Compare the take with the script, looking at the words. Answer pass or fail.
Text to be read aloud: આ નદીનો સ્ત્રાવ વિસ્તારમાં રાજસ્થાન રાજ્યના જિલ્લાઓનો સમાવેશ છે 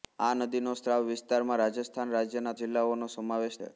pass